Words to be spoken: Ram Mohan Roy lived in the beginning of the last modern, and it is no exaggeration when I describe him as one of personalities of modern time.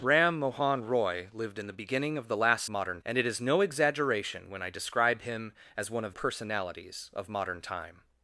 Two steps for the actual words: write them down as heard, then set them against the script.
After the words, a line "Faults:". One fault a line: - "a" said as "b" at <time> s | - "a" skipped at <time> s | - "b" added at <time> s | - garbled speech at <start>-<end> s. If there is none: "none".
Ram Mohan Roy lived in the beginning of the last modern, and it is no exaggeration when I describe him as one of personalities of modern time.
Faults:
none